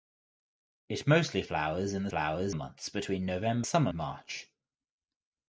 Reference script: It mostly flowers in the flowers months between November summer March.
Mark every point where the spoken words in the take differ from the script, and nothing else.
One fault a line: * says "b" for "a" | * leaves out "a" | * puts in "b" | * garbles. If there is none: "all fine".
all fine